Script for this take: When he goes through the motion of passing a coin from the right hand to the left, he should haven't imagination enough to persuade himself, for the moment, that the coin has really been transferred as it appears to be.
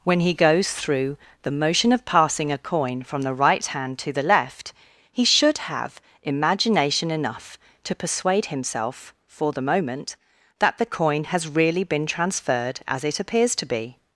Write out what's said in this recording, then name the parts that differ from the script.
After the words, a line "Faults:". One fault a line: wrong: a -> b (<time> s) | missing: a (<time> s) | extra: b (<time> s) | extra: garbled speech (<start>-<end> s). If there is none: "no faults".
When he goes through the motion of passing a coin from the right hand to the left, he should have imagination enough to persuade himself, for the moment, that the coin has really been transferred as it appears to be.
Faults:
wrong: haven't -> have (5.7 s)